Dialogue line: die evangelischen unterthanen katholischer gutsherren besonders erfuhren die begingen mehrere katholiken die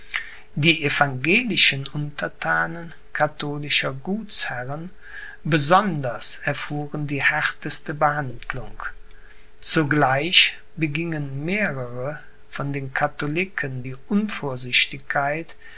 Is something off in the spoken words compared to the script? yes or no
yes